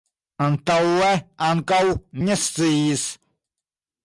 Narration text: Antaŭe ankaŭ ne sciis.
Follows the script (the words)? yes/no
yes